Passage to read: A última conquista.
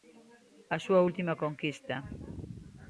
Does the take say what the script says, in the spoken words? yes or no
no